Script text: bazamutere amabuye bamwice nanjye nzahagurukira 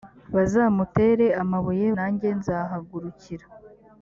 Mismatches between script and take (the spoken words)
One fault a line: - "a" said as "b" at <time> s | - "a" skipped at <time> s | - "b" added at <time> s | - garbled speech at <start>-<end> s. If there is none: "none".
- "bamwice" skipped at 1.9 s